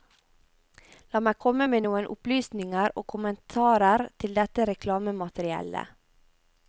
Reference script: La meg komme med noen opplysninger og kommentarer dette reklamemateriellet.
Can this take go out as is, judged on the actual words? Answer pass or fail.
fail